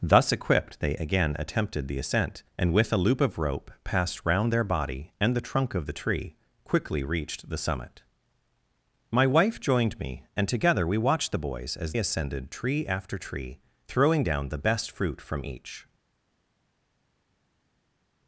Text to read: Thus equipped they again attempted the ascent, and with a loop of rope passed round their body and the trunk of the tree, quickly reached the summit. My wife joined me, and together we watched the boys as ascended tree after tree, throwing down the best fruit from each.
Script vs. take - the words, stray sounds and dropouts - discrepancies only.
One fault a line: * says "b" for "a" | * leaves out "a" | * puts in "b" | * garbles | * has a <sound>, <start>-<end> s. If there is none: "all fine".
all fine